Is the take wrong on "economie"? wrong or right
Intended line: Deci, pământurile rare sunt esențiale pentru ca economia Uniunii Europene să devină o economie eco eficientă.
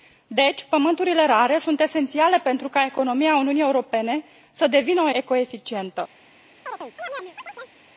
wrong